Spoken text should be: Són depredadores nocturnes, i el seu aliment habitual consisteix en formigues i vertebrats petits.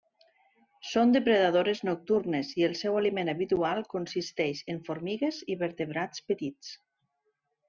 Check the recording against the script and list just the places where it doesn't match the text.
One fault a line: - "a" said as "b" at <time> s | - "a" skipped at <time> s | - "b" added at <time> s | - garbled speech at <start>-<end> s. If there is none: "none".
none